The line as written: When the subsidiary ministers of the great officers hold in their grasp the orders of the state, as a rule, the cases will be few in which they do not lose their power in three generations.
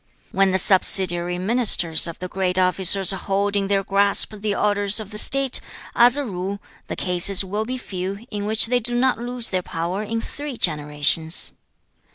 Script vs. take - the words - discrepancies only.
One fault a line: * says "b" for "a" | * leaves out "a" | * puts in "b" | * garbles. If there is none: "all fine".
all fine